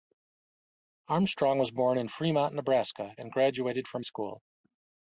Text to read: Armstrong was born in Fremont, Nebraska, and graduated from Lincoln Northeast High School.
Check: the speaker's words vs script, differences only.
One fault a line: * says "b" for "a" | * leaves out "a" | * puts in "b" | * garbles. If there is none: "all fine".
* leaves out "Lincoln Northeast High"